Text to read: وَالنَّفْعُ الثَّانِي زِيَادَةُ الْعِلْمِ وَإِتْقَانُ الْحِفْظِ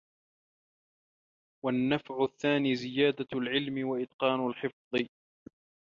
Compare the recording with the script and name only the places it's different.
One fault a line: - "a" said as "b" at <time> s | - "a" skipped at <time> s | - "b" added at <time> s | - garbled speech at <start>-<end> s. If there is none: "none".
none